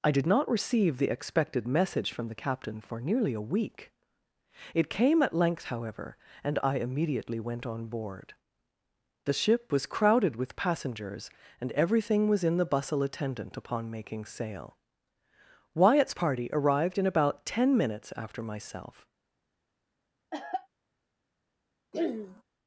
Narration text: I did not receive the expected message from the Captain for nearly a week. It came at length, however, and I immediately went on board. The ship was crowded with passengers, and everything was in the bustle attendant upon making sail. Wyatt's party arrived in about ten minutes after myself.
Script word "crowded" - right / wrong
right